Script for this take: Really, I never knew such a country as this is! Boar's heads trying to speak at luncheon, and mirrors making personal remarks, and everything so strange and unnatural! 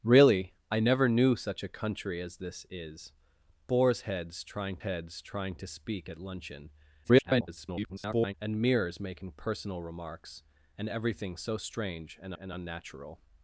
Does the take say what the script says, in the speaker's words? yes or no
no